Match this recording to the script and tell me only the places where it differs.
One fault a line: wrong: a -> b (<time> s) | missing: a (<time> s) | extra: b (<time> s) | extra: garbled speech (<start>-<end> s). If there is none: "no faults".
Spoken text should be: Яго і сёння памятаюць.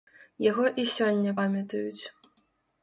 no faults